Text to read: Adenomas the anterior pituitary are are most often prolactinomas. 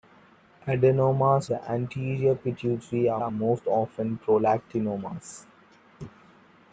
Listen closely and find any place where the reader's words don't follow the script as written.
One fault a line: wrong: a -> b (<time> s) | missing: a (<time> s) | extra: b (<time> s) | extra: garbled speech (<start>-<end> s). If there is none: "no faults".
no faults